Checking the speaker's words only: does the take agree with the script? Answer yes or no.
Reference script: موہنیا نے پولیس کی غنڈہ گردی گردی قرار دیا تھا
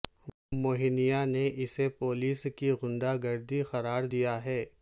no